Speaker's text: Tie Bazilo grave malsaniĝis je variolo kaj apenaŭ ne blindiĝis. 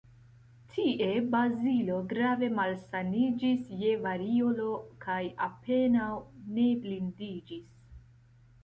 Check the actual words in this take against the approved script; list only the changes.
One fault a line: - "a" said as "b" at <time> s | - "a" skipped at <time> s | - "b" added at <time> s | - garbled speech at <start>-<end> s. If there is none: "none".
none